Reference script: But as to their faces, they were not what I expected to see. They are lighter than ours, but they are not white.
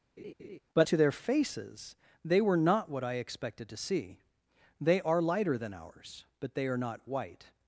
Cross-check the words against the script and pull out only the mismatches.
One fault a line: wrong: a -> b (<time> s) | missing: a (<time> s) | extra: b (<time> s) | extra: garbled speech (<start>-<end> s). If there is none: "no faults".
missing: as (0.9 s)